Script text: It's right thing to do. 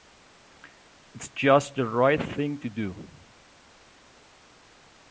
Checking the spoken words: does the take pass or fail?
fail